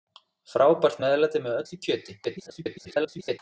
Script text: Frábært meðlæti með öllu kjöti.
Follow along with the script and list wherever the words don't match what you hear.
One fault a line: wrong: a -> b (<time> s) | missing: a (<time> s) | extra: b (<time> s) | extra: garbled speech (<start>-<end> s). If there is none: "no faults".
extra: garbled speech (2.2-3.4 s)